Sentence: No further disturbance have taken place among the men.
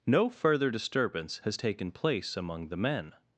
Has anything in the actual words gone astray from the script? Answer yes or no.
yes